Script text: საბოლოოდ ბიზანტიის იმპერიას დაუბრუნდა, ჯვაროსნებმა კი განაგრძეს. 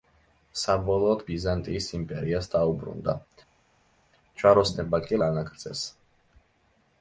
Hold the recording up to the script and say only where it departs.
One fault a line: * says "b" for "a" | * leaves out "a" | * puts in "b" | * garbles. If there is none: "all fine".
all fine